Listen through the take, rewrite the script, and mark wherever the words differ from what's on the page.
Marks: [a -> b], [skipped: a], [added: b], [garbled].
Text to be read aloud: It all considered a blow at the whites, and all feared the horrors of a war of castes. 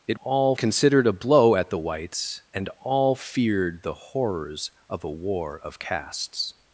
It all considered a blow at the whites, and all feared the horrors of a war of castes.